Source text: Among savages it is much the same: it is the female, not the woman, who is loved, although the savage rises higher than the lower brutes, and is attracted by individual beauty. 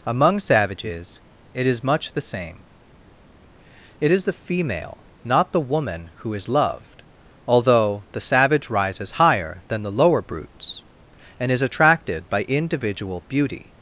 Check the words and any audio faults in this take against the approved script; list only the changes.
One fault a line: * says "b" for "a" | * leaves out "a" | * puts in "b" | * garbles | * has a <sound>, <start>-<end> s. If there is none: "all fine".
all fine